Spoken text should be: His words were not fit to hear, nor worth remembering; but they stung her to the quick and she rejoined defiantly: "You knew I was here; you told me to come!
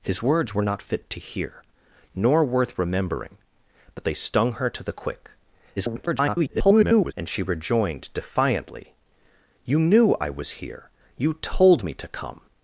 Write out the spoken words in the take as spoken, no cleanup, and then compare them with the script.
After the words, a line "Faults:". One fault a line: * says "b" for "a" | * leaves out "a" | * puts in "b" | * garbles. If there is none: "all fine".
His words were not fit to hear, nor worth remembering; but they stung her to the quick [garbled] and she rejoined defiantly: "You knew I was here; you told me to come!
Faults:
* garbles